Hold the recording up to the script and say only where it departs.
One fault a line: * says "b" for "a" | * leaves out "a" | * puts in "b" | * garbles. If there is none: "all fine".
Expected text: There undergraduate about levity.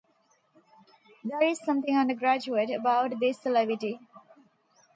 * puts in "is something"
* puts in "this"